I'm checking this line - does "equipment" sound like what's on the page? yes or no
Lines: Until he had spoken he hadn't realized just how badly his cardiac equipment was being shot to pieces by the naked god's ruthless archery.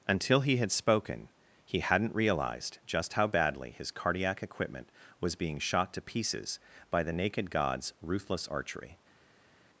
yes